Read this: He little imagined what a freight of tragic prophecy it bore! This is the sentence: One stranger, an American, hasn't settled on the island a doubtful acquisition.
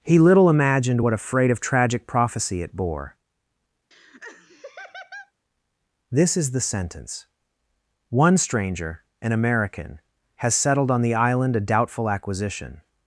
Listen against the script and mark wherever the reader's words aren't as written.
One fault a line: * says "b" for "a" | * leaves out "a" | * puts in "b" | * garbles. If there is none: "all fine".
* says "has" for "hasn't"